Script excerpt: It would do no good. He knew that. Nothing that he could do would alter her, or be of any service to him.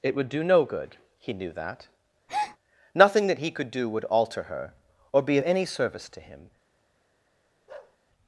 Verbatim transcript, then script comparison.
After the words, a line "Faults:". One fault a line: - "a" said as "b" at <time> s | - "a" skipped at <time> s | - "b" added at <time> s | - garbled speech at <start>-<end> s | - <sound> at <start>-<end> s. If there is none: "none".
It would do no good. He knew that. Nothing that he could do would alter her, or be of any service to him.
Faults:
- breath at 2.3-2.6 s
- bark at 7.7-8.0 s